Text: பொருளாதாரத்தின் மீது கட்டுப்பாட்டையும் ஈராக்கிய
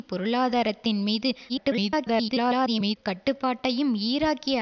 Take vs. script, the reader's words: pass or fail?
fail